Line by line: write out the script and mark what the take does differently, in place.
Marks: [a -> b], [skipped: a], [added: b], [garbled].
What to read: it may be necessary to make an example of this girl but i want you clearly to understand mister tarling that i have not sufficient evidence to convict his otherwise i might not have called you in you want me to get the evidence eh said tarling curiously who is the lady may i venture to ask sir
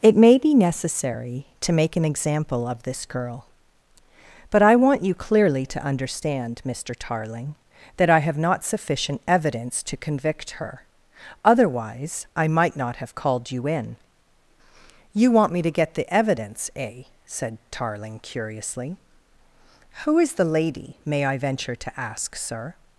it may be necessary to make an example of this girl but i want you clearly to understand mister tarling that i have not sufficient evidence to convict [his -> her] otherwise i might not have called you in you want me to get the evidence eh said tarling curiously who is the lady may i venture to ask sir